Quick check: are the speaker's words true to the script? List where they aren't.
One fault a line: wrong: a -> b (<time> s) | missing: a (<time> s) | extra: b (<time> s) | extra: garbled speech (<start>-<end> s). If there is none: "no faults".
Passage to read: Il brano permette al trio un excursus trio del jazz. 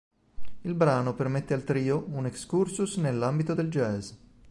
wrong: trio -> nell'ambito (2.9 s)